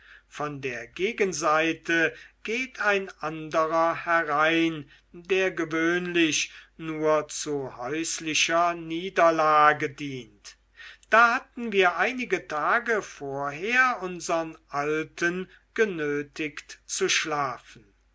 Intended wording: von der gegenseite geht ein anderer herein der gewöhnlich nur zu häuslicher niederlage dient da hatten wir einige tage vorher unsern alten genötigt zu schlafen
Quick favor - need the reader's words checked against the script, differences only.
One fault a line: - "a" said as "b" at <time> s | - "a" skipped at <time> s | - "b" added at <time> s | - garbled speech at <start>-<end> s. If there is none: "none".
none